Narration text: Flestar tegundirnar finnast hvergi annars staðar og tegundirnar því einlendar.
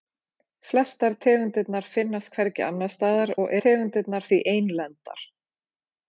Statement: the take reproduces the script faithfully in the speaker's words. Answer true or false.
true